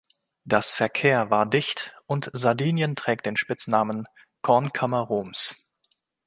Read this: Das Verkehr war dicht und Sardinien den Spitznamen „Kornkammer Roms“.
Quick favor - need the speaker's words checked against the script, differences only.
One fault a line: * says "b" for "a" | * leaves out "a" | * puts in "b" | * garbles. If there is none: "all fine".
* puts in "trägt"